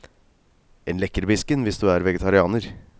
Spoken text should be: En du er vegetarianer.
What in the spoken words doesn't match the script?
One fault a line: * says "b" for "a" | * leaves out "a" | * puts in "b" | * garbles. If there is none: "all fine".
* puts in "lekkerbisken hvis"